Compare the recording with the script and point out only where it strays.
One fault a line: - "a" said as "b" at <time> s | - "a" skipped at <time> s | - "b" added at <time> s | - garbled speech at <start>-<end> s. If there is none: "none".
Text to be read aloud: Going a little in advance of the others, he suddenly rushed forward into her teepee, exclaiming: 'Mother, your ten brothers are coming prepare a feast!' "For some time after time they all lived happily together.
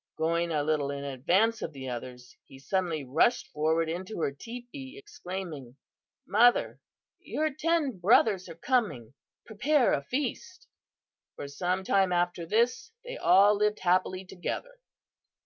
- "time" said as "this" at 12.5 s